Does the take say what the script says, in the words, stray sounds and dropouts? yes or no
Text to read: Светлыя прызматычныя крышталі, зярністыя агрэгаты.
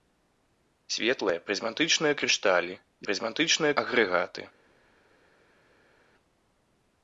no